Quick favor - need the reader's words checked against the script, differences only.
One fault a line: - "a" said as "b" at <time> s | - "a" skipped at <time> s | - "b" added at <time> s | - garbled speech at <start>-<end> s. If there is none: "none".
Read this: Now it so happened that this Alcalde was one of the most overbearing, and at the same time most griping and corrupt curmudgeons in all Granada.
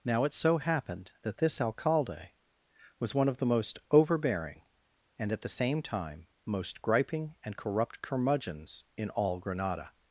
none